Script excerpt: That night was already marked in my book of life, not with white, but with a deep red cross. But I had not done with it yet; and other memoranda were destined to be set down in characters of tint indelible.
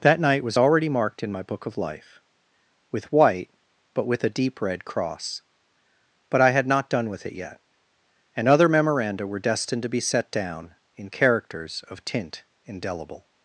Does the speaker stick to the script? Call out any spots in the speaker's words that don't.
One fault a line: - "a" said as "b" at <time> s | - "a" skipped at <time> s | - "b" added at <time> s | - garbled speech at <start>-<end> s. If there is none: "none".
- "not" skipped at 2.2 s